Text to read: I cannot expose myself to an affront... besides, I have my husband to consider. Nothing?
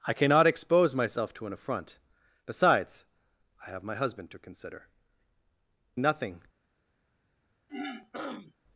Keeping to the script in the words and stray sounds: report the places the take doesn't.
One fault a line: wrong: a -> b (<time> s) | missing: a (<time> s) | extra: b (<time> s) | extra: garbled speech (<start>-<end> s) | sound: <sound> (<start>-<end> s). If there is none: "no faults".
sound: throat clearing (7.7-8.5 s)